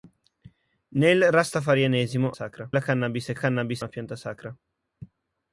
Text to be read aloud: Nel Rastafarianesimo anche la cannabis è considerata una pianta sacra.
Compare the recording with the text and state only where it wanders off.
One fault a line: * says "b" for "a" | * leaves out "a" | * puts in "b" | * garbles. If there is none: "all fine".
* says "sacra" for "anche"
* says "cannabis" for "considerata"